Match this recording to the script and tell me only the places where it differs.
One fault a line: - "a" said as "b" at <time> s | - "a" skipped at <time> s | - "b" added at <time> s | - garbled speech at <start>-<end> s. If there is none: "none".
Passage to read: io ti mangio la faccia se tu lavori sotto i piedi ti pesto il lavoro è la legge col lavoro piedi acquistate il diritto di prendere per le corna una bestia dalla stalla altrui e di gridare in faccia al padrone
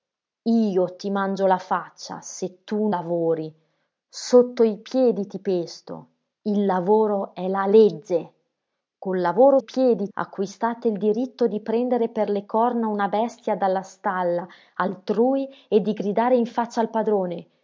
none